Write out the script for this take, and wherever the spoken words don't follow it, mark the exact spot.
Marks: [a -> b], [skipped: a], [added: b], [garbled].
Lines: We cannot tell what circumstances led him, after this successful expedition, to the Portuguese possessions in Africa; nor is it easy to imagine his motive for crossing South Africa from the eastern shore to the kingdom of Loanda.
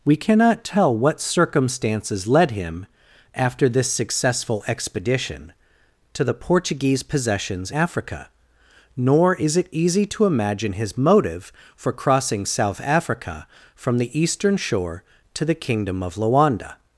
We cannot tell what circumstances led him, after this successful expedition, to the Portuguese possessions [skipped: in] Africa; nor is it easy to imagine his motive for crossing South Africa from the eastern shore to the kingdom of Loanda.